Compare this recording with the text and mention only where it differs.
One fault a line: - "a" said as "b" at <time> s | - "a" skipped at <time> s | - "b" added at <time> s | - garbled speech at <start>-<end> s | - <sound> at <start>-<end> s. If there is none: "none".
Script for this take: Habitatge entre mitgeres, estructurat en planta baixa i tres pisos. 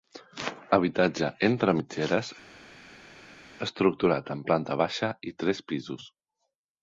none